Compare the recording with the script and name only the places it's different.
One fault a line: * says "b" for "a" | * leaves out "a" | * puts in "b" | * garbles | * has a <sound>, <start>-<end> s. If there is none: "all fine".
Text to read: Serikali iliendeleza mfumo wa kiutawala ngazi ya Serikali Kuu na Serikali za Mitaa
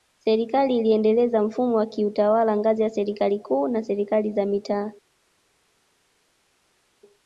all fine